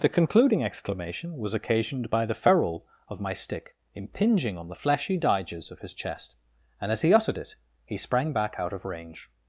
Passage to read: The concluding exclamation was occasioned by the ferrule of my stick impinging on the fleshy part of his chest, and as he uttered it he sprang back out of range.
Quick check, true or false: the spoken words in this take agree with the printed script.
false